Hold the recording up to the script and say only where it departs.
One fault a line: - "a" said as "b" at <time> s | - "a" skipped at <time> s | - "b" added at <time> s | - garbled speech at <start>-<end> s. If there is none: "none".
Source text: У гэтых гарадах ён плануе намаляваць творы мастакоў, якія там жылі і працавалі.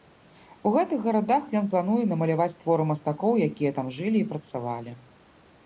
none